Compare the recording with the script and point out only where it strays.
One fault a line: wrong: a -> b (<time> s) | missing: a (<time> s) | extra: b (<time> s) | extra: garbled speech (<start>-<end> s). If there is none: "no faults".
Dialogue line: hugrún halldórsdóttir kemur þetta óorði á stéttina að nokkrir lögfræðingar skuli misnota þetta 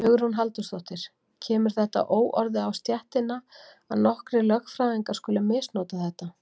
no faults